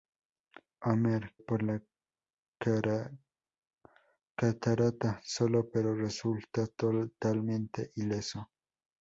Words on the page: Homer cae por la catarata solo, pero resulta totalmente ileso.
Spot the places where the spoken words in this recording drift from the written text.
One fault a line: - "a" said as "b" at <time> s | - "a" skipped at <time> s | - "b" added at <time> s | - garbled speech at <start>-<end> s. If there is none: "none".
- "cae" skipped at 1.3 s